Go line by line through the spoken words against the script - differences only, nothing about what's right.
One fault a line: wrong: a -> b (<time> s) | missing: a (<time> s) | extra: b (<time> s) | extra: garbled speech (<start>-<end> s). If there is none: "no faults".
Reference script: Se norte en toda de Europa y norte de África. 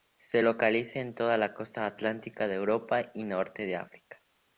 wrong: norte -> localiza (0.4 s)
extra: la costa atlántica (1.4 s)